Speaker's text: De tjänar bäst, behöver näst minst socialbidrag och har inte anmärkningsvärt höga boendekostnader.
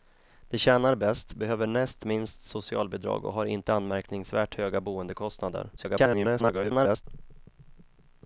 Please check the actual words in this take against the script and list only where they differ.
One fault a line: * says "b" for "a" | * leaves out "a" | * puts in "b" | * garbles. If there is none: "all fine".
* garbles